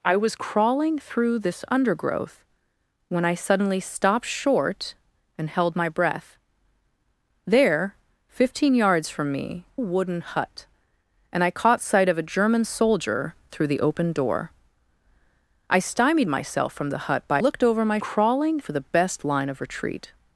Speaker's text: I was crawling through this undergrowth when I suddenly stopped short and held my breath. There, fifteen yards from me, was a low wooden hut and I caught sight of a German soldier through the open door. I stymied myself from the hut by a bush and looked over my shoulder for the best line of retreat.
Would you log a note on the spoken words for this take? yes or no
yes